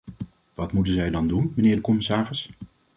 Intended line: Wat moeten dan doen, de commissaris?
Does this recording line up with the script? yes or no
no